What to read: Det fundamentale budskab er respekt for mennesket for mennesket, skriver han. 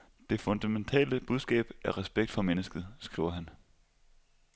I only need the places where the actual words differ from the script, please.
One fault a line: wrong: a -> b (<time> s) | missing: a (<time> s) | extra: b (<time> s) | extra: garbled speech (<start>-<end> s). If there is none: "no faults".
missing: for mennesket (2.9 s)